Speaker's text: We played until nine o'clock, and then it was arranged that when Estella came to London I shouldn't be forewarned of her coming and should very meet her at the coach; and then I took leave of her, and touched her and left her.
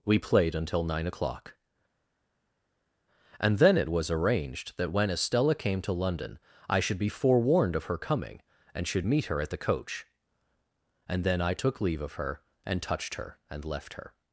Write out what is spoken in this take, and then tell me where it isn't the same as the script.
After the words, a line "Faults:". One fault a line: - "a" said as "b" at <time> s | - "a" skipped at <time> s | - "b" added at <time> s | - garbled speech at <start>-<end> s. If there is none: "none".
We played until nine o'clock, and then it was arranged that when Estella came to London I should be forewarned of her coming and should meet her at the coach; and then I took leave of her, and touched her and left her.
Faults:
- "shouldn't" said as "should" at 6.8 s
- "very" skipped at 9.1 s